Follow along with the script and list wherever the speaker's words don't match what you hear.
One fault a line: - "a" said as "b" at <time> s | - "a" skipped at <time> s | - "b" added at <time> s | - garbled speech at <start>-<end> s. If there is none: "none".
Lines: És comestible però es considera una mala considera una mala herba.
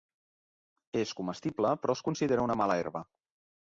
- "considera una mala" skipped at 2.8 s